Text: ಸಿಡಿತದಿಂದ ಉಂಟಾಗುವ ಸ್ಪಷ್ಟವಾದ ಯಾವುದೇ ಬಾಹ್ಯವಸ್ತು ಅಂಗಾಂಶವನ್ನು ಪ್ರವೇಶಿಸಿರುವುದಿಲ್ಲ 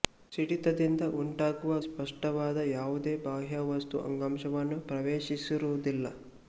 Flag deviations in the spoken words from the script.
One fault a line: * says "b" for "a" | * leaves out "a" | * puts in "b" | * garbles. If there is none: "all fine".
all fine